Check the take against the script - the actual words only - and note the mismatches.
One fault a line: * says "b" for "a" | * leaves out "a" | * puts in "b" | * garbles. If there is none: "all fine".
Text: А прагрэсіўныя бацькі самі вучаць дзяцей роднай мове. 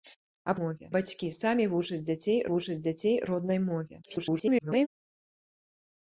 * says "мове" for "прагрэсіўныя"
* puts in "вучаць дзяцей"
* garbles